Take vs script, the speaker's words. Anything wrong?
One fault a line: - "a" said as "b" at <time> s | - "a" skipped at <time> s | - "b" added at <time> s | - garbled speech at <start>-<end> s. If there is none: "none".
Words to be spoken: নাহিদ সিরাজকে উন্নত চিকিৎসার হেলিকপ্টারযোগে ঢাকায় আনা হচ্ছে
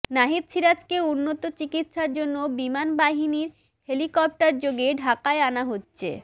- "জন্য বিমান বাহিনীর" added at 2.1 s